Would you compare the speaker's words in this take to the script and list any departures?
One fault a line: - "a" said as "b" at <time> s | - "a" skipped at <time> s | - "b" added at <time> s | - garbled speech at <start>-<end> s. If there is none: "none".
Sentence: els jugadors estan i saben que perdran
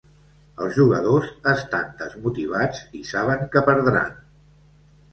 - "desmotivats" added at 2.0 s